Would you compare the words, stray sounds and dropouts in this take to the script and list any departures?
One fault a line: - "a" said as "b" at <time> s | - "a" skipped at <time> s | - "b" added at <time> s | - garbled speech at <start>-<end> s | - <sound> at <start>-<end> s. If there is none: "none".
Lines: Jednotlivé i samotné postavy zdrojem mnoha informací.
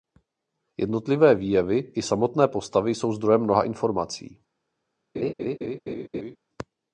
- "výjevy" added at 1.4 s
- "jsou" added at 3.0 s
- laugh at 5.1-6.4 s